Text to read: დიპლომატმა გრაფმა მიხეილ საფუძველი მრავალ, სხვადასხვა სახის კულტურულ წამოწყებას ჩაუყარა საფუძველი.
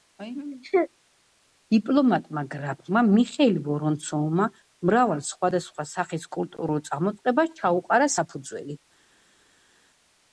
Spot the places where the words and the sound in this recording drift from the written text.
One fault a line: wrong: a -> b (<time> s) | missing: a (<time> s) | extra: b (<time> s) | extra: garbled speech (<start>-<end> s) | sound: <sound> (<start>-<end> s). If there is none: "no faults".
wrong: საფუძველი -> ვორონცოვმა (3.7 s)